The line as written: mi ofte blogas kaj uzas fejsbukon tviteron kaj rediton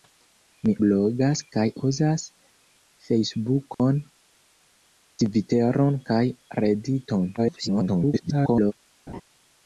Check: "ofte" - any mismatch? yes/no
yes